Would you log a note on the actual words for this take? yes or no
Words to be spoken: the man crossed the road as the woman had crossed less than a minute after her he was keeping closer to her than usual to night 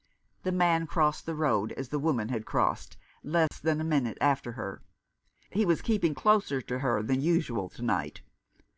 no